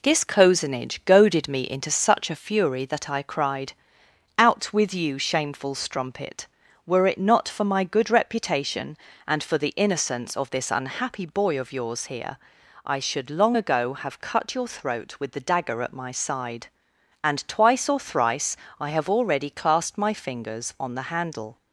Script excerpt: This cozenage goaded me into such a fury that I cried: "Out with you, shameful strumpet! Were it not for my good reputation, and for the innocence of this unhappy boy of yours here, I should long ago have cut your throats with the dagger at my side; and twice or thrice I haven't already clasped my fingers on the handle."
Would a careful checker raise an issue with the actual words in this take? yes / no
yes